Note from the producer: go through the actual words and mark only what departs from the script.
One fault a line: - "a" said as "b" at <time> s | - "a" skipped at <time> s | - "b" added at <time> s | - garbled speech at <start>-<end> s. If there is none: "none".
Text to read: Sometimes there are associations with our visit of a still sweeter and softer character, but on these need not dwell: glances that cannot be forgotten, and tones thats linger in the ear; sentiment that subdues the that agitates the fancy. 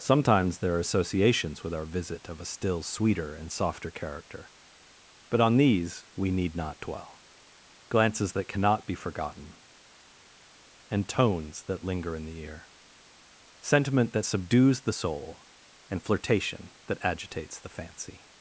- "we" added at 6.2 s
- "thats" said as "that" at 11.6 s
- "soul and flirtation" added at 14.9 s